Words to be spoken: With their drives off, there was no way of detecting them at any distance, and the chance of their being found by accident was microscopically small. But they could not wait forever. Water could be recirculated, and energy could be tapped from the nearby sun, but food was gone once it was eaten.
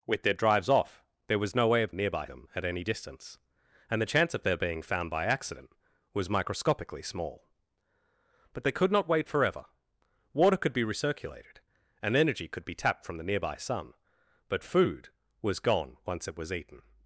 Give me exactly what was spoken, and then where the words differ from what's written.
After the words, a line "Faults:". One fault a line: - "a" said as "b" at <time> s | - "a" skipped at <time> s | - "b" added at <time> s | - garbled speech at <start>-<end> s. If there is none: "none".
With their drives off, there was no way of nearby them at any distance, and the chance of their being found by accident was microscopically small. But they could not wait forever. Water could be recirculated, and energy could be tapped from the nearby sun, but food was gone once it was eaten.
Faults:
- "detecting" said as "nearby" at 1.9 s